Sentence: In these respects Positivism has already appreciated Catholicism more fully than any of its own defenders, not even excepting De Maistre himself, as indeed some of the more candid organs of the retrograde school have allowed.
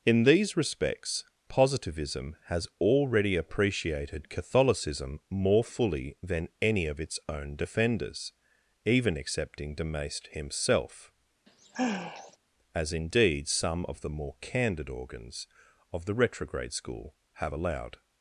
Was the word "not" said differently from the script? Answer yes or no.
yes